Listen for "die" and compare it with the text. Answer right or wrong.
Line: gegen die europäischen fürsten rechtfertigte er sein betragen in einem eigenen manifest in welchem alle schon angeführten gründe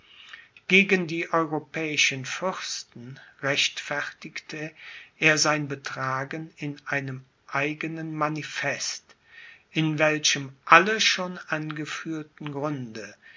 right